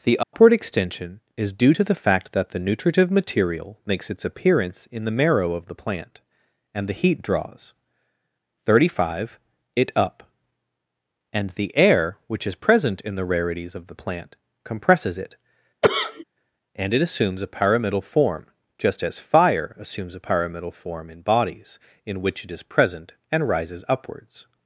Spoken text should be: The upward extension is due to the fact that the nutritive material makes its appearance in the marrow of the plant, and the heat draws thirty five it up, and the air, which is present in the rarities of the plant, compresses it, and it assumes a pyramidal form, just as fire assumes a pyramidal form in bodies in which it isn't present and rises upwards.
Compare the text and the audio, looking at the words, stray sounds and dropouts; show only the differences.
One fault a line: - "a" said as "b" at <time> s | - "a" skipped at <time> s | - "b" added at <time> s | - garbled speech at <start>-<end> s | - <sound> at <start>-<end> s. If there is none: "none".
- dropout at 0.2-0.3 s
- cough at 15.8-16.2 s
- "isn't" said as "is" at 22.5 s